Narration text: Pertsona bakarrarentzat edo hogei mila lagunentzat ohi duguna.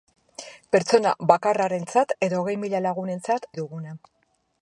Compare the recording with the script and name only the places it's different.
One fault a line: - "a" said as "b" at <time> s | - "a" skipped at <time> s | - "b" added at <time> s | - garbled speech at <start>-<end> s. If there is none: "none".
none